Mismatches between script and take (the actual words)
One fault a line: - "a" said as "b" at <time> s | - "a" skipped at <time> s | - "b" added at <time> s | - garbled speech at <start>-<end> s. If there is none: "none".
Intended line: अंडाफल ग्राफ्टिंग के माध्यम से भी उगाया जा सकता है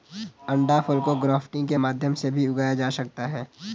- "को" added at 1.0 s